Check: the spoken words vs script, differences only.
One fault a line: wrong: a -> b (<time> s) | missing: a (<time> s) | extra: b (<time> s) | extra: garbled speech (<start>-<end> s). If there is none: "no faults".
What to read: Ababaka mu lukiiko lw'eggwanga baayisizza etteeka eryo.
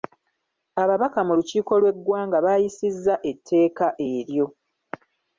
no faults